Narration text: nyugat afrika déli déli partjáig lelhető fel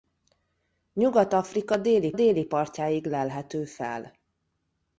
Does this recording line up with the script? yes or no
yes